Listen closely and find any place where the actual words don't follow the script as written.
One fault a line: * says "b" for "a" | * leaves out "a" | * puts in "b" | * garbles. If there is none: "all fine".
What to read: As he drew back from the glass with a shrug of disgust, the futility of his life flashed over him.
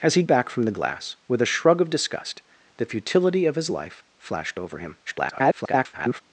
* leaves out "drew"
* garbles